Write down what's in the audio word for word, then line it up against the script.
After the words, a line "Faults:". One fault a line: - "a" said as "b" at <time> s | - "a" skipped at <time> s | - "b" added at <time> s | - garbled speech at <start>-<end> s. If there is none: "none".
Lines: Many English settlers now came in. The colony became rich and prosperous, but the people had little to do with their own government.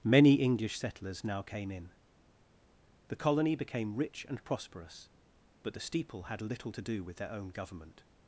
Many English settlers now came in. The colony became rich and prosperous, but the steeple had little to do with their own government.
Faults:
- "people" said as "steeple" at 5.8 s